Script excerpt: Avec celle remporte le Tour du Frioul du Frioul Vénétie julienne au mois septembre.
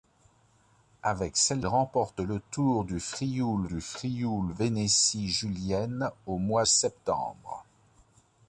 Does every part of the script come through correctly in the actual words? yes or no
yes